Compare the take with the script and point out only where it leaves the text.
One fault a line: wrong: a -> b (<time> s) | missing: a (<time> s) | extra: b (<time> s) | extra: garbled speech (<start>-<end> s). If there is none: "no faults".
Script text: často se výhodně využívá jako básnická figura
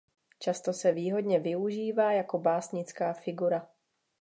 no faults